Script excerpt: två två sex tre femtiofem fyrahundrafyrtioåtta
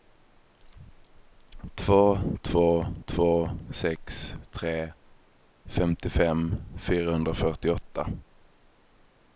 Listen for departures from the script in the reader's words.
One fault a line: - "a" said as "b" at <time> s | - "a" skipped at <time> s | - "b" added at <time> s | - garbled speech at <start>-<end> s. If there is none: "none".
- "två" added at 3.0 s